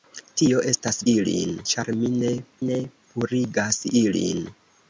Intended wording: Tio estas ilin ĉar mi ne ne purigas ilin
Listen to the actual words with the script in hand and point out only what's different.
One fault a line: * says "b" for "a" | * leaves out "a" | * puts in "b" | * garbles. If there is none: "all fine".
all fine